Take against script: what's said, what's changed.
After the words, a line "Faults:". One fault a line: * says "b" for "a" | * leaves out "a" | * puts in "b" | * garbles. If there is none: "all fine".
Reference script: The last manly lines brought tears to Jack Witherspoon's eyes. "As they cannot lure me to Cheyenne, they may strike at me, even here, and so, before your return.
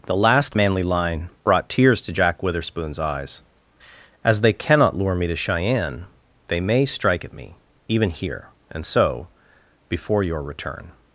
The last manly line brought tears to Jack Witherspoon's eyes. "As they cannot lure me to Cheyenne, they may strike at me, even here, and so, before your return.
Faults:
* says "line" for "lines"